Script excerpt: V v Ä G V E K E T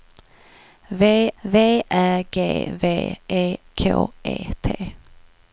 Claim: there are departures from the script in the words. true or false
false